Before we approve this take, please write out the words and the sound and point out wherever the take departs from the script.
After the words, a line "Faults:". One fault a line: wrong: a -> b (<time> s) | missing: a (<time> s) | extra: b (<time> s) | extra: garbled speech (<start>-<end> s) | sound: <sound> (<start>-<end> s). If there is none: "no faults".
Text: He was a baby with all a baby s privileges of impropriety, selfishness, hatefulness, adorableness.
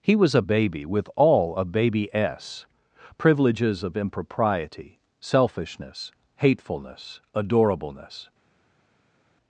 He was a baby with all a baby s privileges of impropriety, selfishness, hatefulness, adorableness.
Faults:
no faults